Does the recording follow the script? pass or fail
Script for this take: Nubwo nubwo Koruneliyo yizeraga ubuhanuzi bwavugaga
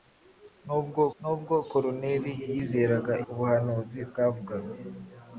pass